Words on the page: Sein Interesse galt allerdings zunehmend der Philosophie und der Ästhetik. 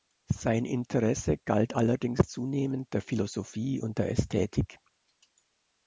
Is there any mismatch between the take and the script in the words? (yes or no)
no